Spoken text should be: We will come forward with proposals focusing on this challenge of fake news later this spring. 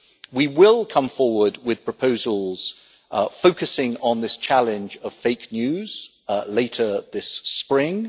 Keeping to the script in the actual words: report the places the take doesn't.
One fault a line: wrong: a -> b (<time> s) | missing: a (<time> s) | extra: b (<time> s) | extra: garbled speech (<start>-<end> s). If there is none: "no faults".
no faults